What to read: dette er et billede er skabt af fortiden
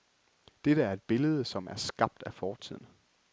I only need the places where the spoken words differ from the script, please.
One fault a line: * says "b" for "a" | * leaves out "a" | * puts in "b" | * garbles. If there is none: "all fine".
* puts in "som"